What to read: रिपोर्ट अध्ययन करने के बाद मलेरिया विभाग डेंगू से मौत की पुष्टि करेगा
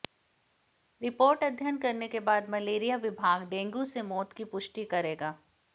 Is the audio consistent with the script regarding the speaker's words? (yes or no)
yes